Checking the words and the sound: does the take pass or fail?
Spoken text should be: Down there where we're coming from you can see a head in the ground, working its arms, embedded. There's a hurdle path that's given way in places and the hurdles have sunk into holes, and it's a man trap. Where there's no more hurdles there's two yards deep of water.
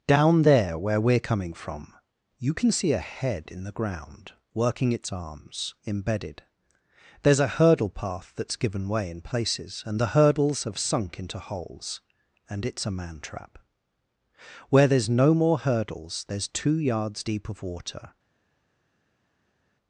pass